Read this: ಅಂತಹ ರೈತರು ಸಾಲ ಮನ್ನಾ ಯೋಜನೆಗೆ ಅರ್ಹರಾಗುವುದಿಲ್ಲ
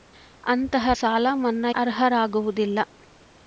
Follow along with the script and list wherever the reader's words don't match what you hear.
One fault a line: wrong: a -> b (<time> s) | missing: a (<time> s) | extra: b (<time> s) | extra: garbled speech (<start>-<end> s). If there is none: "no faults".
missing: ರೈತರು (0.9 s)
missing: ಯೋಜನೆಗೆ (1.7 s)